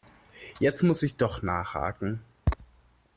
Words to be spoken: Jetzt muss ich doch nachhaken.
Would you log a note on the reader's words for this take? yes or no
no